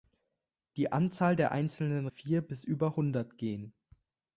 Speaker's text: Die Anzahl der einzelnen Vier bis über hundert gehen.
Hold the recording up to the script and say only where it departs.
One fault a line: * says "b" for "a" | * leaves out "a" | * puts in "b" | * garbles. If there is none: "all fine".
all fine